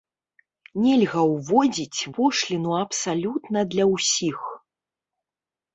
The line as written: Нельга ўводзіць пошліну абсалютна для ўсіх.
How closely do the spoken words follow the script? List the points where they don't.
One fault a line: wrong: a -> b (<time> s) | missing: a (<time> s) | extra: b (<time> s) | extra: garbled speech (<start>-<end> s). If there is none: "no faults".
no faults